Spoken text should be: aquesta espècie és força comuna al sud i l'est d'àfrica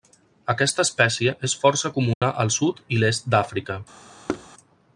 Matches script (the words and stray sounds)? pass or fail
fail